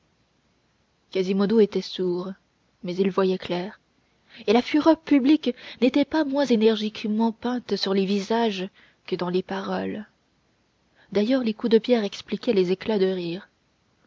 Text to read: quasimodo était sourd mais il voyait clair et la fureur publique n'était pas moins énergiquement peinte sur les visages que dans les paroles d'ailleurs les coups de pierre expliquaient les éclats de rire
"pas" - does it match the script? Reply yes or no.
yes